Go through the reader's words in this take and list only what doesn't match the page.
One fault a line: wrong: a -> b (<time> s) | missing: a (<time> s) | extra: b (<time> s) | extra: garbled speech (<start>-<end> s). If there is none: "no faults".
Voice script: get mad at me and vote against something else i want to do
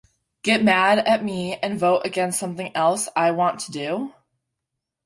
no faults